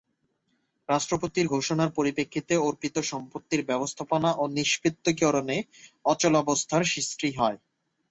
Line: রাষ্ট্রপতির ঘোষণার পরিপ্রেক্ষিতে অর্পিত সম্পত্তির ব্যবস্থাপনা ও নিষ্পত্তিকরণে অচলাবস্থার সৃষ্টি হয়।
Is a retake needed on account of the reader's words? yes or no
no